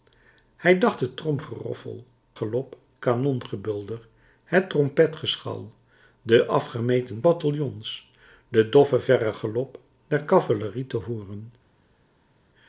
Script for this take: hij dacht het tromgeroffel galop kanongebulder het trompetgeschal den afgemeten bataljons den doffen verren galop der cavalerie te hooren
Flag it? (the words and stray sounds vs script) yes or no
no